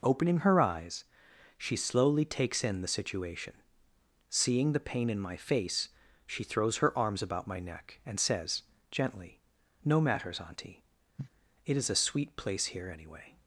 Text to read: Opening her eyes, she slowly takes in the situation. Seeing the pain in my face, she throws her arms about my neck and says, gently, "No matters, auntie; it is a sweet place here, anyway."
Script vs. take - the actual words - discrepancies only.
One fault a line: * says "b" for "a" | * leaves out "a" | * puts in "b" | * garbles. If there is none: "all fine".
all fine